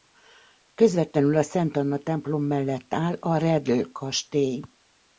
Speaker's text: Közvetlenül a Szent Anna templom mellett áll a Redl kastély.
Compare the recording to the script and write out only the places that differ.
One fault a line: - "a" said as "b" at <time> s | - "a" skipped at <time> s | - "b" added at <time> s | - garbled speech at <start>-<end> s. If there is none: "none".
none